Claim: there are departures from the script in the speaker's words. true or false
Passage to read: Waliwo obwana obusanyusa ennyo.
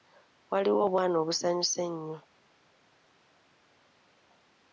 false